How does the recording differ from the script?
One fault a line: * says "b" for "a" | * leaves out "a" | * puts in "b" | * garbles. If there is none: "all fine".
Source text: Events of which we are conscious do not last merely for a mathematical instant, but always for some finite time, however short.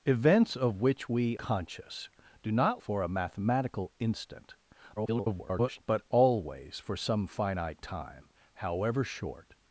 * leaves out "are"
* leaves out "last merely"
* garbles